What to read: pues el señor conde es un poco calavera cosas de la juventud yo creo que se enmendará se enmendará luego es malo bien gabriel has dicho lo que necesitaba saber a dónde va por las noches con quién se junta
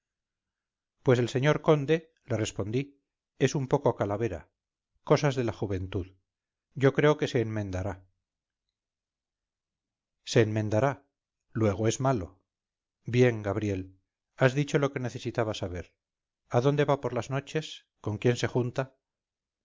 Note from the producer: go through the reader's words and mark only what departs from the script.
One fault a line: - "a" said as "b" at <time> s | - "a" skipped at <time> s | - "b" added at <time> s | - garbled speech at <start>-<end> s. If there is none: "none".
- "le respondí" added at 2.3 s